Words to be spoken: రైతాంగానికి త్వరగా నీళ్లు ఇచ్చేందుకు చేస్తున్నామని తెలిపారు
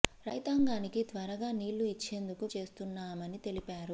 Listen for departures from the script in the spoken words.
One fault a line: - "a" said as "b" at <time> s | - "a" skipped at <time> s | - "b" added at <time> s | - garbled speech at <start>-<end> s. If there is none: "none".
none